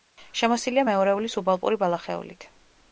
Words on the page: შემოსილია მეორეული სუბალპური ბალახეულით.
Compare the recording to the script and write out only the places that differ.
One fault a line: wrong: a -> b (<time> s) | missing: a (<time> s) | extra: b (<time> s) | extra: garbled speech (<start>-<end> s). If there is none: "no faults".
no faults